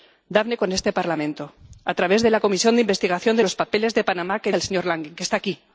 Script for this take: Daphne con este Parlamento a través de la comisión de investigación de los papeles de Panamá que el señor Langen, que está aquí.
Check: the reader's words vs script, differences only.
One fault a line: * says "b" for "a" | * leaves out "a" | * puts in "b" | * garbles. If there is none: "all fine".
all fine